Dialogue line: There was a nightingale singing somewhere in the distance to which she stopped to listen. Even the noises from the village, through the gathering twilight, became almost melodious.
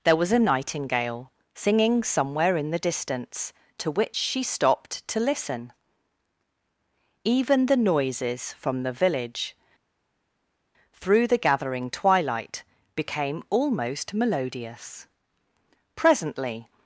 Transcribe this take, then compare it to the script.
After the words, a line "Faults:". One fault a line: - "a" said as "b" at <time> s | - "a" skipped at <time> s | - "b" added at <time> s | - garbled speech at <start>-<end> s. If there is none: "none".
There was a nightingale singing somewhere in the distance to which she stopped to listen. Even the noises from the village, through the gathering twilight, became almost melodious. Presently
Faults:
- "Presently" added at 15.9 s